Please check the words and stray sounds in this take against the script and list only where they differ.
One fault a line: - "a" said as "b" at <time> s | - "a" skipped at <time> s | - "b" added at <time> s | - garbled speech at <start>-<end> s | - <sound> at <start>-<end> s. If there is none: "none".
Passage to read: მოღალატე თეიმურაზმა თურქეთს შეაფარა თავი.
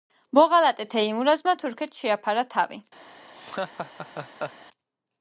- laugh at 3.3-4.5 s